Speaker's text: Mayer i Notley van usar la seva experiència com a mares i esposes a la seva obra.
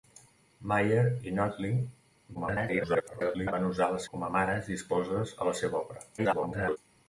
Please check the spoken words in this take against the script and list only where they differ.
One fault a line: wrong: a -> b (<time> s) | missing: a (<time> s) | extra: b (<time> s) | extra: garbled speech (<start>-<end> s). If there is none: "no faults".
extra: garbled speech (2.3-3.5 s)
missing: seva experiència (4.0 s)
extra: garbled speech (6.2-6.8 s)